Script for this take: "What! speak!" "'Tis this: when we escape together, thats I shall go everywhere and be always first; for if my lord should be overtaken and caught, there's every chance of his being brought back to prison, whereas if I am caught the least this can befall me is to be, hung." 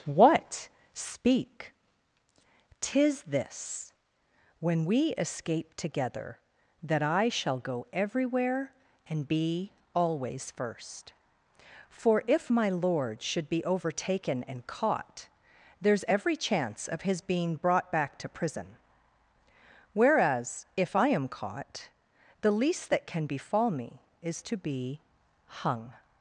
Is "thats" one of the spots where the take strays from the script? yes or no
yes